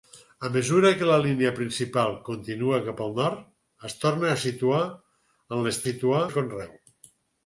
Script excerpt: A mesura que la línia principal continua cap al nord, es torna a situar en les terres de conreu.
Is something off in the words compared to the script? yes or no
yes